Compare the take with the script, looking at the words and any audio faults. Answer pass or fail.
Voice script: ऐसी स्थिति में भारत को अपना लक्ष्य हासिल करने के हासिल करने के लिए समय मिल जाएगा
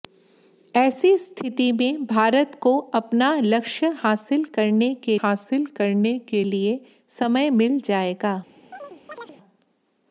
fail